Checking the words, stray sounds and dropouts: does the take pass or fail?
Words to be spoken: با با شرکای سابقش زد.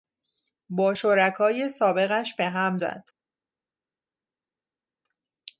fail